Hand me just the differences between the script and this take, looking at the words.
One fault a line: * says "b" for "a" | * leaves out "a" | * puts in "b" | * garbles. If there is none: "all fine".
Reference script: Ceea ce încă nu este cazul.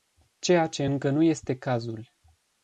all fine